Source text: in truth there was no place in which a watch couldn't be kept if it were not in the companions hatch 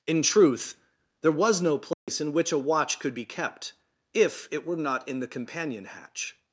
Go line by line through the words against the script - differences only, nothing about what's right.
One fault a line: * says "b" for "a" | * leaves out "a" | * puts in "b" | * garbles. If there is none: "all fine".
* says "could" for "couldn't"
* says "companion" for "companions"